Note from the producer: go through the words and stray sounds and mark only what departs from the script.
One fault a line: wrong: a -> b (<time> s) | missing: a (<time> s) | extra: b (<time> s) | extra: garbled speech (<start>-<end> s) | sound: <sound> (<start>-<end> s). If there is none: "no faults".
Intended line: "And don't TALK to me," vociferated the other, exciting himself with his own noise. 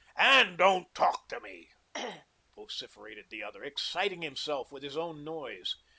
sound: throat clearing (1.9-2.3 s)